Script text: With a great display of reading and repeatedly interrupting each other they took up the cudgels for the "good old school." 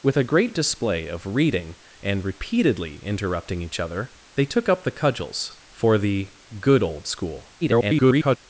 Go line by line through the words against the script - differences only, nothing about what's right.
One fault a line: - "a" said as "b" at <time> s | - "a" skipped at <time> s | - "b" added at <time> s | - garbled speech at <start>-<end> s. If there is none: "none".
- garbled speech at 7.6-8.4 s